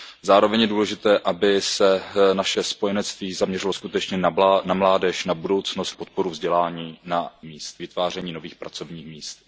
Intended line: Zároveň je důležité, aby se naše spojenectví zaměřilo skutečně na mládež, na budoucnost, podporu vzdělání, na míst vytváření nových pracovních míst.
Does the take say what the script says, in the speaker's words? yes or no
yes